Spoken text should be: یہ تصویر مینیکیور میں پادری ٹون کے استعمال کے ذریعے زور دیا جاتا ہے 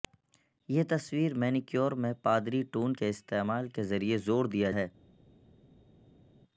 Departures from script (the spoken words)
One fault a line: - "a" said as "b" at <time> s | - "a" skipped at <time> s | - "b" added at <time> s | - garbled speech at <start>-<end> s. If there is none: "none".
- "جاتا" skipped at 4.7 s